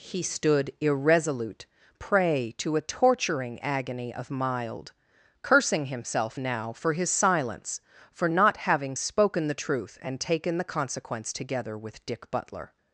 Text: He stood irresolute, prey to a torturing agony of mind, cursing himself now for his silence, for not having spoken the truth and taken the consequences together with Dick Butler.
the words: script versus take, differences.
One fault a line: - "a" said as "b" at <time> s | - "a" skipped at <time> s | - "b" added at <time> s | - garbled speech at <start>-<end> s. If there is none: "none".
- "mind" said as "mild" at 4.3 s
- "consequences" said as "consequence" at 10.6 s